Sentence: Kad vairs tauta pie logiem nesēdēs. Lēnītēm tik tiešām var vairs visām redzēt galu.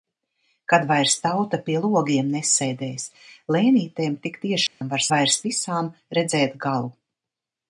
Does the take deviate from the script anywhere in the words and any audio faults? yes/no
yes